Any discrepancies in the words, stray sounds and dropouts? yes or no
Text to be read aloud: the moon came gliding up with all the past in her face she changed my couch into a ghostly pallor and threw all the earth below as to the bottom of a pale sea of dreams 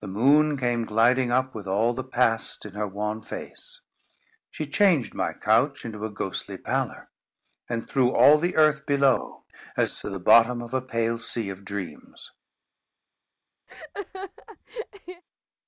yes